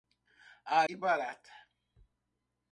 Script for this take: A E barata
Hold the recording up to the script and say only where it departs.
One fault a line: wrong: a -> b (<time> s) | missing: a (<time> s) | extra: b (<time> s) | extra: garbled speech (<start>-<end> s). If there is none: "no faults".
no faults